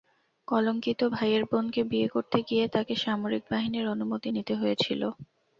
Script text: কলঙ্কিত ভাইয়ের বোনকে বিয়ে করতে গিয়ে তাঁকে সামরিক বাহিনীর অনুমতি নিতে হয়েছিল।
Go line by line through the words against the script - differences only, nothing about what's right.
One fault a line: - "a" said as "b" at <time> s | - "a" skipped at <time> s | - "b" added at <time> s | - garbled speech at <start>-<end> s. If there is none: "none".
none